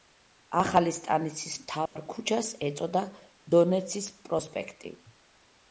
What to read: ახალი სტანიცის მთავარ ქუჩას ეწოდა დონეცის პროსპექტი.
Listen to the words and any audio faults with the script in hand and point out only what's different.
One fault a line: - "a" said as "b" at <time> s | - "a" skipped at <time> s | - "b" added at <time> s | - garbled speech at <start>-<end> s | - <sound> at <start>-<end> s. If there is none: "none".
- dropout at 1.9-2.0 s